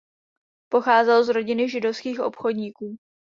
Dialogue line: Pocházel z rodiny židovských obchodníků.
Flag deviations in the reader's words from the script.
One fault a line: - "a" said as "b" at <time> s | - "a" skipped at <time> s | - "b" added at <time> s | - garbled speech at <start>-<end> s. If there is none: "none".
none